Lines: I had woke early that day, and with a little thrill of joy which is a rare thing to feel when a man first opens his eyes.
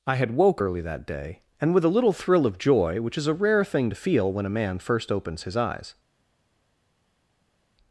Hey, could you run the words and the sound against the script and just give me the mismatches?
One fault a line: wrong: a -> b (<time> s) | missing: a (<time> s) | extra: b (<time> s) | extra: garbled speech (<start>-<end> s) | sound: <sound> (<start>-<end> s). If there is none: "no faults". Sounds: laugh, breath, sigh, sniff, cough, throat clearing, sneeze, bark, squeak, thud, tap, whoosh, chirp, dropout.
no faults